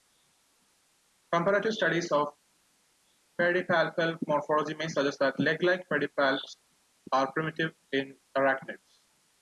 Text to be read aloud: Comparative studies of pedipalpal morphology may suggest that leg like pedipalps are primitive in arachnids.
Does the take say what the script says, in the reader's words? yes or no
yes